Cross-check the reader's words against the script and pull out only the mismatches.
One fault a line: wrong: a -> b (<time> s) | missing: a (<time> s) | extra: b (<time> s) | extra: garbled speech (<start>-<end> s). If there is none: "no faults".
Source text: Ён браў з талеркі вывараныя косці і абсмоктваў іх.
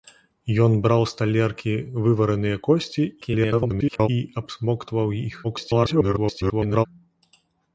extra: garbled speech (3.2-4.1 s)
extra: garbled speech (5.4-6.9 s)